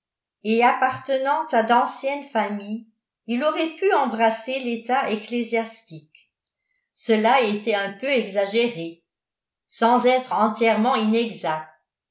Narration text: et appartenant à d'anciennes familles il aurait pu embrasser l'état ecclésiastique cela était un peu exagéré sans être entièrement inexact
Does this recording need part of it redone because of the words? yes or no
no